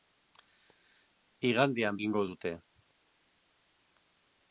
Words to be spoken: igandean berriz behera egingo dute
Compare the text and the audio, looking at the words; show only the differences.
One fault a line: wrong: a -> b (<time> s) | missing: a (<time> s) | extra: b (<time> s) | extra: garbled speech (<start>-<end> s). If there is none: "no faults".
missing: berriz behera (2.0 s)